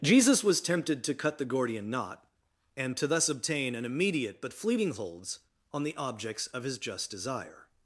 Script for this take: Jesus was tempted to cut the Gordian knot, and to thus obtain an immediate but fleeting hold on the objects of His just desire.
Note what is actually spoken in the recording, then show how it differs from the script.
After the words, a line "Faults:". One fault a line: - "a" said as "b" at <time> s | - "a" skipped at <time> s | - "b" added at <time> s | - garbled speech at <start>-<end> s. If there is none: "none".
Jesus was tempted to cut the Gordian knot, and to thus obtain an immediate but fleeting holds on the objects of His just desire.
Faults:
- "hold" said as "holds" at 4.9 s